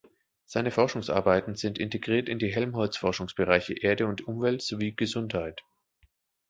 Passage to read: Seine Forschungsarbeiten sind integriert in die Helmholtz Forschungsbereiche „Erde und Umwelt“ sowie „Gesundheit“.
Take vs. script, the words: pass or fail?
pass